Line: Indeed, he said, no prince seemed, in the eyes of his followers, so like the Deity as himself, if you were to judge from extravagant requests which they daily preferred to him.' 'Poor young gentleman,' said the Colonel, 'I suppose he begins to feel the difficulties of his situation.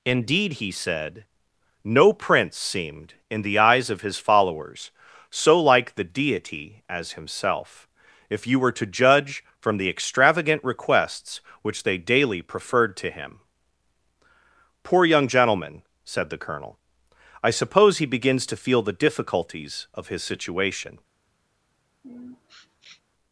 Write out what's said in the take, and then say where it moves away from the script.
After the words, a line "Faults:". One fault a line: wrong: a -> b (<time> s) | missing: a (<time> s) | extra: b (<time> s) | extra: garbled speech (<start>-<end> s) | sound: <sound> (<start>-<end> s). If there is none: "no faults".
Indeed, he said, no prince seemed, in the eyes of his followers, so like the Deity as himself, if you were to judge from the extravagant requests which they daily preferred to him.' 'Poor young gentleman,' said the Colonel, 'I suppose he begins to feel the difficulties of his situation.
Faults:
extra: the (9.8 s)
sound: sniff (22.0-23.0 s)